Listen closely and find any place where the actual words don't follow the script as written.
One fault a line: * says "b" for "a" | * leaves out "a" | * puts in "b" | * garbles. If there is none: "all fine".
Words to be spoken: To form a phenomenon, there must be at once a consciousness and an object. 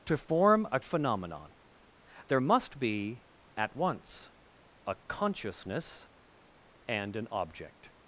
all fine